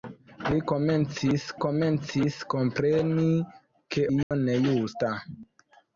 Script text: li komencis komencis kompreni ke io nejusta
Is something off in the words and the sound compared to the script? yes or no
yes